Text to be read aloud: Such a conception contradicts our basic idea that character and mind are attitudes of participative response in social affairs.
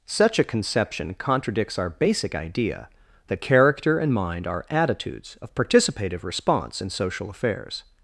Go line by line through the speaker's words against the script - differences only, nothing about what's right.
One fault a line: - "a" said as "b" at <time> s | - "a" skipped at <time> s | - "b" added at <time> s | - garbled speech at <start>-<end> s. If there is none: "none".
none